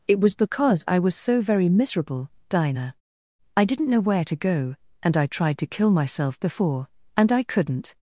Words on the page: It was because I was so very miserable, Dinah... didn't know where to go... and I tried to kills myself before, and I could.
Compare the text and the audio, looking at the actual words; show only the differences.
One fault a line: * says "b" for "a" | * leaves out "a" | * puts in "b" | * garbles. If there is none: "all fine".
* puts in "I"
* says "kill" for "kills"
* says "couldn't" for "could"